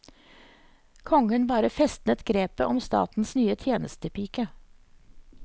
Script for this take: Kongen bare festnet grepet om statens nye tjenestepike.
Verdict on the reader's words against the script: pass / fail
pass